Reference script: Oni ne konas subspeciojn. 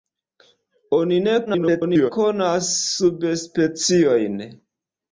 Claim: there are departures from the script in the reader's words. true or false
true